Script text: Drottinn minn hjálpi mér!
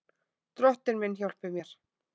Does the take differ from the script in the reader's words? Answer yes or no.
no